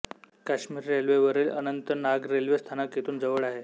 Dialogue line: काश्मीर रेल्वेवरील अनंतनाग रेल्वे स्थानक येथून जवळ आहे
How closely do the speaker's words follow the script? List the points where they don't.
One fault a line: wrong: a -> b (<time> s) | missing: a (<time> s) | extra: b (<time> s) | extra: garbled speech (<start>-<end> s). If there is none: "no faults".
no faults